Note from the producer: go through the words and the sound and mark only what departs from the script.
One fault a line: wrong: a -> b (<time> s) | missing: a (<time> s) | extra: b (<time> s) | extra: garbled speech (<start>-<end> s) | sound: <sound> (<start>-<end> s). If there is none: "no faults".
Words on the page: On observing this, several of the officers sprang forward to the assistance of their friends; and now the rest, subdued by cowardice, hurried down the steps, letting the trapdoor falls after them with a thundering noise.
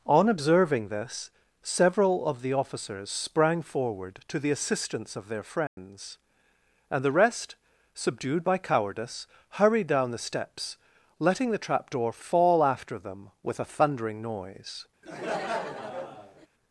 sound: dropout (5.7-5.8 s)
missing: now (7.0 s)
wrong: falls -> fall (12.1 s)
sound: laugh (15.0-16.5 s)